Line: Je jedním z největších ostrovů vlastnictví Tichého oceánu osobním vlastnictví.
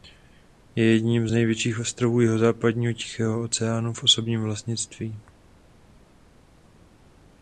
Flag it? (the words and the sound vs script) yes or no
yes